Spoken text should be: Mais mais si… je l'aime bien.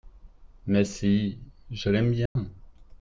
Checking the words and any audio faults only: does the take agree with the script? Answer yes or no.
no